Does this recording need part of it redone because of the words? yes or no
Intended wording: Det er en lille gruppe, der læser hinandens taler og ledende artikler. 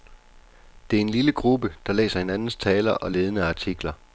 no